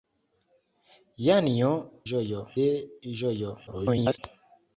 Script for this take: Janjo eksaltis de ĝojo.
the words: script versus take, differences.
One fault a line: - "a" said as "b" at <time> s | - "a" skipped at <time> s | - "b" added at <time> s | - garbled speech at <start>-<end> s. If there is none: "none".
- "eksaltis" said as "ĝojo" at 2.1 s
- garbled speech at 3.7-4.2 s